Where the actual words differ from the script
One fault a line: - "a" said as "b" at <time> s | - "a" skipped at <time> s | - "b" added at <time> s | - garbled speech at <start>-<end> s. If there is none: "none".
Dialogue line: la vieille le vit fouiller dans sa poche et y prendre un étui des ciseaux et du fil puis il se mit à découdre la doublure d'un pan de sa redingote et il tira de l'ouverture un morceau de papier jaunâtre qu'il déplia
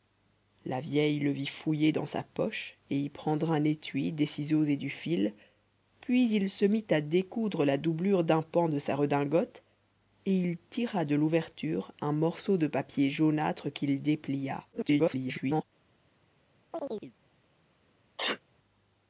- garbled speech at 14.7-15.6 s